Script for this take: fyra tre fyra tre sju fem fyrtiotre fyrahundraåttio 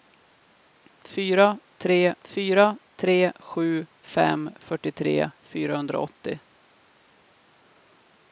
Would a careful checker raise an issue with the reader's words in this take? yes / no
no